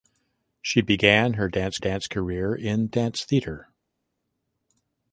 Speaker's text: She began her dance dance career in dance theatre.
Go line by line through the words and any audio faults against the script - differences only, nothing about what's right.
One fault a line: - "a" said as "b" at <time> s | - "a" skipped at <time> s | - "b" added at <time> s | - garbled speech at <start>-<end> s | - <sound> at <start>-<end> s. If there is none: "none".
none